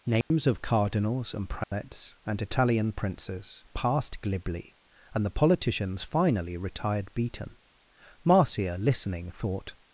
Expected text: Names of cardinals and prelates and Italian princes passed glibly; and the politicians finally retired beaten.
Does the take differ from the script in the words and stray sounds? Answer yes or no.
yes